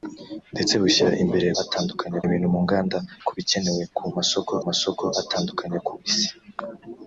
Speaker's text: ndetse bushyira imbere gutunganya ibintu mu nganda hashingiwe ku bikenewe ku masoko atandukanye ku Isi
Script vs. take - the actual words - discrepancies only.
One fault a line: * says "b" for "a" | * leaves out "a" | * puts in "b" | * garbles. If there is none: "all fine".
* says "atandukanye" for "gutunganya"
* leaves out "hashingiwe"
* puts in "masoko"